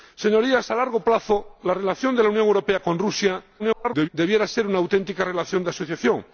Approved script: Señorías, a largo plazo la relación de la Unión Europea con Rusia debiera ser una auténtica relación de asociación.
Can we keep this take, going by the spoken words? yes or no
no